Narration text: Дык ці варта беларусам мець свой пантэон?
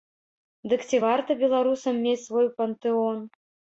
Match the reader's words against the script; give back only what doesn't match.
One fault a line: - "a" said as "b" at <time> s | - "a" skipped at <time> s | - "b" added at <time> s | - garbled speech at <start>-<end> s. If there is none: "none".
none